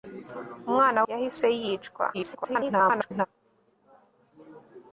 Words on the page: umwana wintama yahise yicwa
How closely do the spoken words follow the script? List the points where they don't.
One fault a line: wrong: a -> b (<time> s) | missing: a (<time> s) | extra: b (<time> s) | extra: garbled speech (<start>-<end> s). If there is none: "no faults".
missing: wintama (1.0 s)
extra: garbled speech (2.1-3.3 s)